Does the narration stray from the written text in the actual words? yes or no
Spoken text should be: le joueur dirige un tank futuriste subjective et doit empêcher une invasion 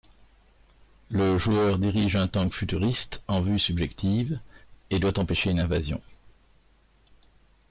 yes